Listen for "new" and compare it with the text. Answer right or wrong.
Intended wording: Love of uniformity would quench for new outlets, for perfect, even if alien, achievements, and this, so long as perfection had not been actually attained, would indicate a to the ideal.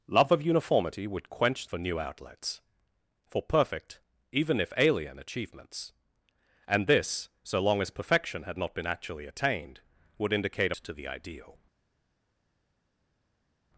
right